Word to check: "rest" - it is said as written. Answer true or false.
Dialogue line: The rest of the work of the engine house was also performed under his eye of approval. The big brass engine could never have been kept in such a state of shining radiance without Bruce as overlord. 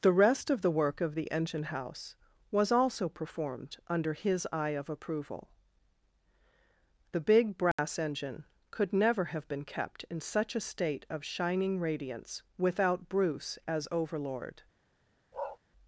true